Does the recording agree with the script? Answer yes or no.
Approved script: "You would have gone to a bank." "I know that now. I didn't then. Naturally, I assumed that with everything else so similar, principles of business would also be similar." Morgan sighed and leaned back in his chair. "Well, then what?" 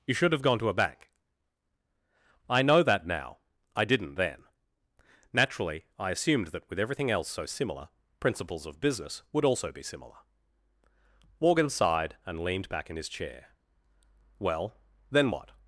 no